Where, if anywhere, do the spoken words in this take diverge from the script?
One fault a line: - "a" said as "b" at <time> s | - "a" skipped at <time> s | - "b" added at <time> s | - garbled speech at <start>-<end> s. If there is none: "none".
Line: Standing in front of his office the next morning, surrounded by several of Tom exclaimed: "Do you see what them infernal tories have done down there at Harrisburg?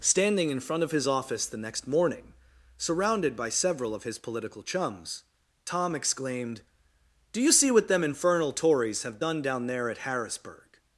- "his political chums" added at 4.0 s